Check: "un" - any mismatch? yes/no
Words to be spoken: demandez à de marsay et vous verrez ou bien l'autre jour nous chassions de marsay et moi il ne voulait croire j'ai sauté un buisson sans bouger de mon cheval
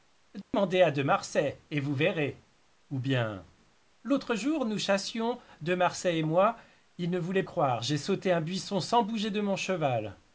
no